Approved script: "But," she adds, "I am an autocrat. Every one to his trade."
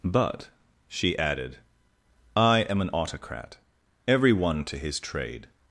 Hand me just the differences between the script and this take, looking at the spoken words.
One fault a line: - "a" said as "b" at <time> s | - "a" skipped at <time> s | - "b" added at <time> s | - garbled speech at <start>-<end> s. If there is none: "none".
- "adds" said as "added" at 1.2 s